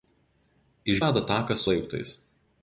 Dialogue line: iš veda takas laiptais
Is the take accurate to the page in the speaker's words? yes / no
yes